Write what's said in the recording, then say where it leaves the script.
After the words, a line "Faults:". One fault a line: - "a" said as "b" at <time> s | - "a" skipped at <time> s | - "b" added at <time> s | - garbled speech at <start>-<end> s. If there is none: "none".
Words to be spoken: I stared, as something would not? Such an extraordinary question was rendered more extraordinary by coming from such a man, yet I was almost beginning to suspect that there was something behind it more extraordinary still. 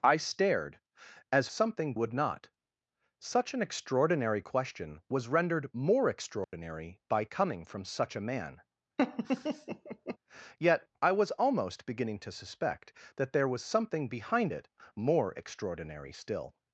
I stared, as something would not? Such an extraordinary question was rendered more extraordinary by coming from such a man, yet I was almost beginning to suspect that there was something behind it more extraordinary still.
Faults:
none